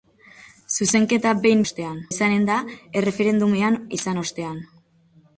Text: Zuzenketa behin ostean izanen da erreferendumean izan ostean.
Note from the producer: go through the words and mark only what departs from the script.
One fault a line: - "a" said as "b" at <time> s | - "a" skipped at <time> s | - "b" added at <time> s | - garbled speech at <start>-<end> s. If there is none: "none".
none